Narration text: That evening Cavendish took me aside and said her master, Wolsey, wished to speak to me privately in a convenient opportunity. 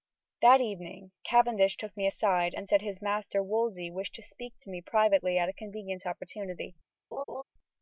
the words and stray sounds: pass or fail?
fail